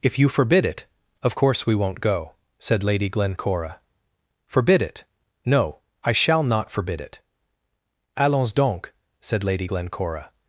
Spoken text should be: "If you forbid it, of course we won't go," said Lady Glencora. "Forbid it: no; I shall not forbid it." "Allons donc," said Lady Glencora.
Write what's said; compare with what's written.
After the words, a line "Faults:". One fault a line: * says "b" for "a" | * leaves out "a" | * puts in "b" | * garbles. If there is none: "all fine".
"If you forbid it, of course we won't go," said Lady Glencora. "Forbid it: no; I shall not forbid it." "Allons donc," said Lady Glencora.
Faults:
all fine